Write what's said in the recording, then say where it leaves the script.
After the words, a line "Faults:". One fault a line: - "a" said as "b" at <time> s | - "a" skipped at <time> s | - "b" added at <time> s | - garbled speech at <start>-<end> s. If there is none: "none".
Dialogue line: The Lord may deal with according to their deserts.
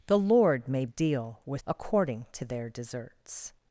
The Lord may deal with according to their deserts.
Faults:
none